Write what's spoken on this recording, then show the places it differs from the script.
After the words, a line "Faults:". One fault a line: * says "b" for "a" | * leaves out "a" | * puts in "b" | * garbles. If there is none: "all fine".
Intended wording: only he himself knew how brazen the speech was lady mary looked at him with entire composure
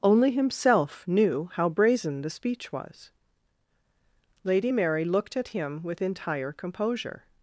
only himself knew how brazen the speech was lady mary looked at him with entire composure
Faults:
* leaves out "he"